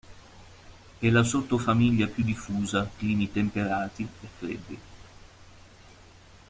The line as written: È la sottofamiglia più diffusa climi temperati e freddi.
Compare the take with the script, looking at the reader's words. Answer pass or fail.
pass